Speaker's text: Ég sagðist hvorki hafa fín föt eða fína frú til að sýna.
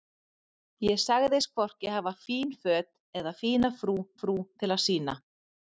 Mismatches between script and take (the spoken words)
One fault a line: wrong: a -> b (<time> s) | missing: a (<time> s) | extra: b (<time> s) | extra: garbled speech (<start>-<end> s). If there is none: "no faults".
extra: frú (4.2 s)